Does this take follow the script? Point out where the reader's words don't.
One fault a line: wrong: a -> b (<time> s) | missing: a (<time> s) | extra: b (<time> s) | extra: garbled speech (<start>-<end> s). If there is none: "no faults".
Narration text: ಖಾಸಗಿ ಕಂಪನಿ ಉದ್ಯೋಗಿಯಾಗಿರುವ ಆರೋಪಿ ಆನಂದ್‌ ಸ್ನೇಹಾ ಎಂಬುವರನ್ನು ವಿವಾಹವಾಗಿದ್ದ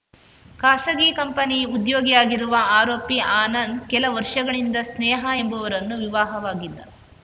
extra: ಕೆಲ ವರ್ಷಗಳಿಂದ (3.9 s)